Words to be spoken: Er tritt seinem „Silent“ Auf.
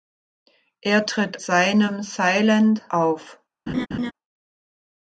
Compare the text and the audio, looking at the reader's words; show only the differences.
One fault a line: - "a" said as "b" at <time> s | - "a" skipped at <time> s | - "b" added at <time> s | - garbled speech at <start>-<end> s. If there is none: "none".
none